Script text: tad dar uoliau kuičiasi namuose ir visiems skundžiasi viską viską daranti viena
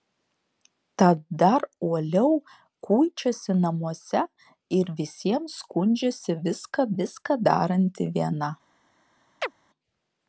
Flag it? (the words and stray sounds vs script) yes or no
yes